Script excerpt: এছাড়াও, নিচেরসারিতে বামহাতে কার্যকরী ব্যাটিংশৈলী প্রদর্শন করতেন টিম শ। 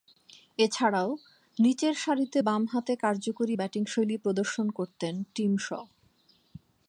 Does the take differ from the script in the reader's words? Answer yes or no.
no